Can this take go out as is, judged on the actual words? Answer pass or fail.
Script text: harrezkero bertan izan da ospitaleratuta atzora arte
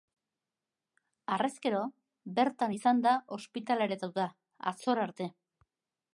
pass